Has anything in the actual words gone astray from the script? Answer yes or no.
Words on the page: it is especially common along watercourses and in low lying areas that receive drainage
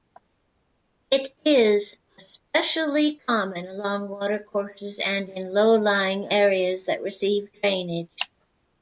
no